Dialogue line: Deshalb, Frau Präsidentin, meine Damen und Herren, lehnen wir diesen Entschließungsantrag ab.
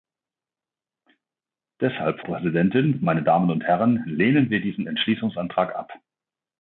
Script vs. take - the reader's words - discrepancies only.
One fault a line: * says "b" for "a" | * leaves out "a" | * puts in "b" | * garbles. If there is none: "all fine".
* leaves out "Frau"